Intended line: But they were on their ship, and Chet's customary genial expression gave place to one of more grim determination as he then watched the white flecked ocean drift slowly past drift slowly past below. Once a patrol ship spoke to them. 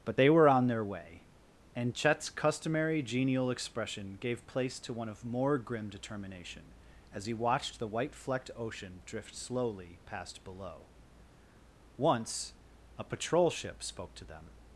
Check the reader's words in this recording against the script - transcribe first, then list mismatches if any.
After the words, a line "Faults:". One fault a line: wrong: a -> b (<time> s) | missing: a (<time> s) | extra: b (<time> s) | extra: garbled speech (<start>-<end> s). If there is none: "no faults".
But they were on their way, and Chet's customary genial expression gave place to one of more grim determination as he watched the white flecked ocean drift slowly past below. Once a patrol ship spoke to them.
Faults:
wrong: ship -> way (0.8 s)
missing: then (7.3 s)
missing: drift slowly past (10.4 s)